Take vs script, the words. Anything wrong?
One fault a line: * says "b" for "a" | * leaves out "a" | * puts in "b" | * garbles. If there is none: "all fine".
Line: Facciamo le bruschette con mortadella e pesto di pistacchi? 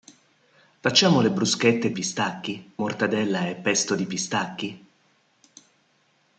* says "pistacchi" for "con"